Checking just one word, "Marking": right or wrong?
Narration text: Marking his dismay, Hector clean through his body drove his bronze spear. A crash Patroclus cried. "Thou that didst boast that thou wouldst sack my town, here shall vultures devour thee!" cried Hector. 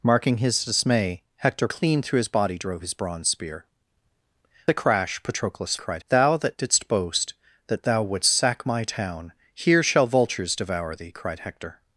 right